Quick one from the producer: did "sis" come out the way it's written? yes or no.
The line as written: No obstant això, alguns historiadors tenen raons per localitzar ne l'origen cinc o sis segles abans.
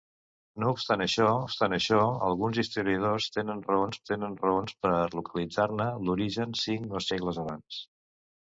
no